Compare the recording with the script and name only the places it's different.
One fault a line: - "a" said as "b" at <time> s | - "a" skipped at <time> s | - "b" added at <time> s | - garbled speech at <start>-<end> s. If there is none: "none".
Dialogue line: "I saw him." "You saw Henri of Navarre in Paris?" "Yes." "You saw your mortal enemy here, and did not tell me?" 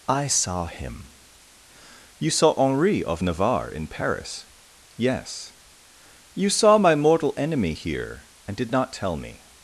- "your" said as "my" at 6.8 s